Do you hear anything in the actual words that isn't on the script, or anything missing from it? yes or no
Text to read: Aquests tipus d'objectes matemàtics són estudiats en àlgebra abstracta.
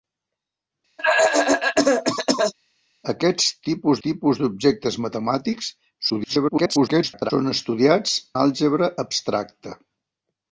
yes